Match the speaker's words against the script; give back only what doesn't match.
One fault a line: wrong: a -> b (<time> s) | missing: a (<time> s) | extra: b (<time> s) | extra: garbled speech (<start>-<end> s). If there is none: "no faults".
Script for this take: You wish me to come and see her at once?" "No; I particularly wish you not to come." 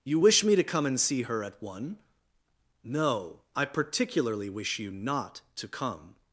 wrong: once -> one (1.6 s)